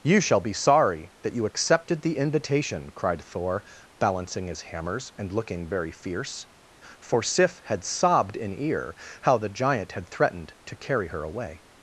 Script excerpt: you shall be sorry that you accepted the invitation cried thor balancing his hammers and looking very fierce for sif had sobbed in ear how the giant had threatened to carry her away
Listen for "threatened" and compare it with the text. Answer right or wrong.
right